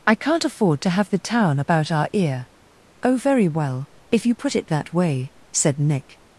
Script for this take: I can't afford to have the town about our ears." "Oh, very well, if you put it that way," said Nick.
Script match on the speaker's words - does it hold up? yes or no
no